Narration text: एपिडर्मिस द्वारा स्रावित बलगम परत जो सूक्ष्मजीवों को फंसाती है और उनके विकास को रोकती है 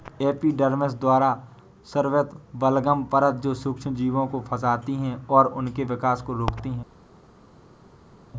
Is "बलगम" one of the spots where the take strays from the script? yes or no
no